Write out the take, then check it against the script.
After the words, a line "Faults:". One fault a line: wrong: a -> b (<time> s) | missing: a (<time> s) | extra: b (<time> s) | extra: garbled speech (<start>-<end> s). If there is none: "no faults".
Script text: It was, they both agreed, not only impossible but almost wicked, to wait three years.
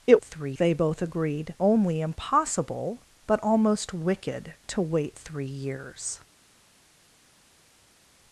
It three, they both agreed, only impossible but almost wicked, to wait three years.
Faults:
wrong: was -> three (0.2 s)
missing: not (1.5 s)